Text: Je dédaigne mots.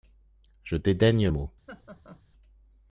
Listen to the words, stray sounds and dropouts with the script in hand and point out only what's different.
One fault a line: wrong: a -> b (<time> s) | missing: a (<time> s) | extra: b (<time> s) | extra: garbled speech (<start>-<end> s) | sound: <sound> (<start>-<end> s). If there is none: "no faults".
sound: laugh (1.7-2.2 s)